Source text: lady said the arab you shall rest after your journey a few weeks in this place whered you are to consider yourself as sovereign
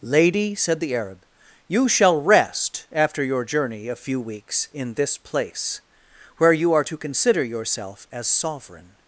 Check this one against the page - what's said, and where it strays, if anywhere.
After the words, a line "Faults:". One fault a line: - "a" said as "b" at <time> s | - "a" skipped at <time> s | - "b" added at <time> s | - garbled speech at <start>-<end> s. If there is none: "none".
lady said the arab you shall rest after your journey a few weeks in this place where you are to consider yourself as sovereign
Faults:
- "whered" said as "where" at 6.4 s